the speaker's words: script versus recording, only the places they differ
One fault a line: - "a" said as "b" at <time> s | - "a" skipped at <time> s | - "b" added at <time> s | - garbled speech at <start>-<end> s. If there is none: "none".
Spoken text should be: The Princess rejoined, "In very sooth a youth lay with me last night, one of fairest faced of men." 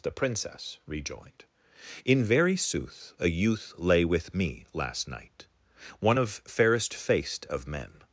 none